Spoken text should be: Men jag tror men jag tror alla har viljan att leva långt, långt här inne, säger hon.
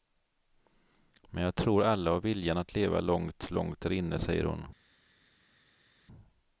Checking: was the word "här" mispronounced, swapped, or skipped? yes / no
yes